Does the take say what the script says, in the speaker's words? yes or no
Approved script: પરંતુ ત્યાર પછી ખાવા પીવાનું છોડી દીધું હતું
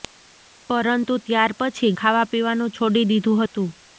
yes